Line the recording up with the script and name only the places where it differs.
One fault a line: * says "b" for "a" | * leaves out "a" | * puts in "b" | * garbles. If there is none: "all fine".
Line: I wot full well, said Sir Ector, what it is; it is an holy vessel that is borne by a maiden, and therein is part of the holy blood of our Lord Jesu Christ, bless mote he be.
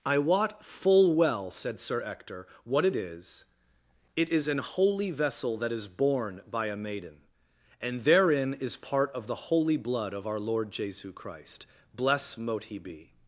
all fine